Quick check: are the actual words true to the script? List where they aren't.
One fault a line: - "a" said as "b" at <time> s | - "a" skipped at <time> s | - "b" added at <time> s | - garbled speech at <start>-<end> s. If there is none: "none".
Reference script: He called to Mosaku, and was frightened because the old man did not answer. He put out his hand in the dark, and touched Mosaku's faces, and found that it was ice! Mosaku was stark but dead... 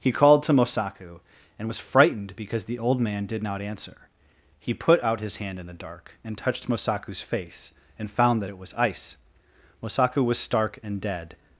- "faces" said as "face" at 7.2 s
- "but" said as "and" at 10.8 s